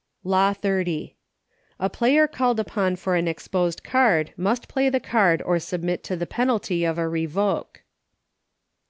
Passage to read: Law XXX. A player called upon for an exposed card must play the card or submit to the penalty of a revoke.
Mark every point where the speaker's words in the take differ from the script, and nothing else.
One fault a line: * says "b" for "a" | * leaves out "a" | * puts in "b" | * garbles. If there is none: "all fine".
all fine